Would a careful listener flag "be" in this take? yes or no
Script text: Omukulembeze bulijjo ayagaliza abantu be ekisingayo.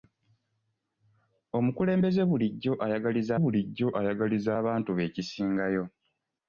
no